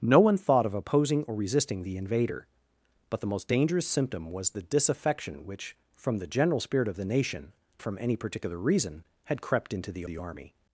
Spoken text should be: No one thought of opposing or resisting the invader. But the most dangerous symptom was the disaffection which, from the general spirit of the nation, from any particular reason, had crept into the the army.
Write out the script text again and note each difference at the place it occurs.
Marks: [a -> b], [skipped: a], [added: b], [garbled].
No one thought of opposing or resisting the invader. But the most dangerous symptom was the disaffection which, from the general spirit of the nation, from any particular reason, had crept into the the army.